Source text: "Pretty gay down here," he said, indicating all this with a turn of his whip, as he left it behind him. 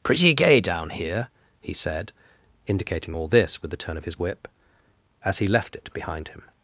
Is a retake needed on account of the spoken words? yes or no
yes